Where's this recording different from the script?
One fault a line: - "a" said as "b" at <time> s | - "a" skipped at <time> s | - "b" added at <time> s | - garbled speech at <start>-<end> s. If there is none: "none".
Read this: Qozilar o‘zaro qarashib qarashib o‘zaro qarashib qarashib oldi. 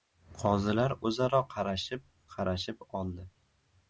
- "o‘zaro qarashib qarashib" skipped at 2.9 s